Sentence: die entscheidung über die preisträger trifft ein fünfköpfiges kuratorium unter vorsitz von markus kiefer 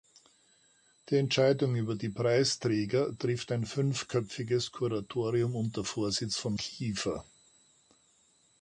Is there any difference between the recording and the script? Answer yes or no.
yes